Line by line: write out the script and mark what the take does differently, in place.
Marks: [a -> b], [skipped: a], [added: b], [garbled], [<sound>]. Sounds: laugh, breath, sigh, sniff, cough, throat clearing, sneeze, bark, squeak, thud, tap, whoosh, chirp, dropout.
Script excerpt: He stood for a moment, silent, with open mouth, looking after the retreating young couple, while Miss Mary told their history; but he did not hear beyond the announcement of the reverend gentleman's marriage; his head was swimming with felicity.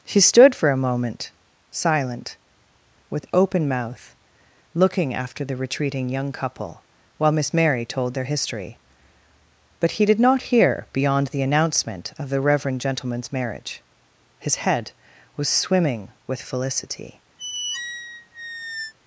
[He -> She] stood for a moment, silent, with open mouth, looking after the retreating young couple, while Miss Mary told their history; but he did not hear beyond the announcement of the reverend gentleman's marriage; his head was swimming with felicity. [squeak]